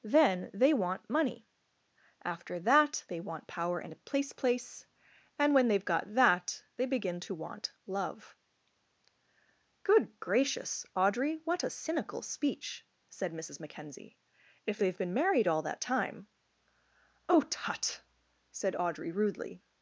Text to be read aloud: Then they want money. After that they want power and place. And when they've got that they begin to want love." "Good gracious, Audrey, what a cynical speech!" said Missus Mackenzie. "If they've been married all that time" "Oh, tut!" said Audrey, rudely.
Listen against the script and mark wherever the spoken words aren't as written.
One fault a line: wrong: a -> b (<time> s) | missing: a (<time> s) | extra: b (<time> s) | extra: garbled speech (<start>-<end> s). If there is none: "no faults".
extra: place (4.3 s)